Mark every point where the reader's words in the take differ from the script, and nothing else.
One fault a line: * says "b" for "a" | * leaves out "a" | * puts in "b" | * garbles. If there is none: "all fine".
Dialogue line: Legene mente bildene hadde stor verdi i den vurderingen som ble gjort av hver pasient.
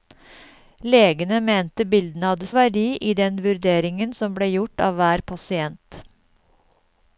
* leaves out "stor"